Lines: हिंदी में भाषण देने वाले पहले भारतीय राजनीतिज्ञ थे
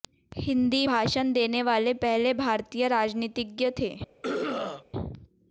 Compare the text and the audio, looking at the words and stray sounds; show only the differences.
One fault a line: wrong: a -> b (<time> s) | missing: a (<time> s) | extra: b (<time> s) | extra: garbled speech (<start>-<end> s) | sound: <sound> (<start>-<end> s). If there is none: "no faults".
missing: में (0.8 s)
sound: throat clearing (4.2-4.8 s)